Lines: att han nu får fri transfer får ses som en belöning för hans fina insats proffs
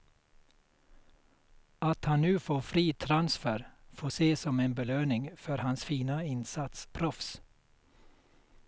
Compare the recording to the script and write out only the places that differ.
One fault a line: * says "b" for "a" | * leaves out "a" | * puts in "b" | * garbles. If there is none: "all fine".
all fine